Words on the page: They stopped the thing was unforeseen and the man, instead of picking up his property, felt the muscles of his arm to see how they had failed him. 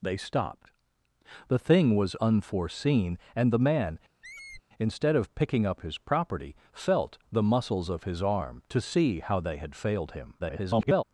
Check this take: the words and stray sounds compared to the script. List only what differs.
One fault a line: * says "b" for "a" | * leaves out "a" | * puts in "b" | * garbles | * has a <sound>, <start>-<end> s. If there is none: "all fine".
* has a squeak, 4.2-4.6 s
* garbles